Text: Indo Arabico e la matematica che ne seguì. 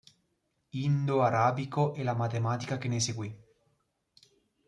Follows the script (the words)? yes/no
yes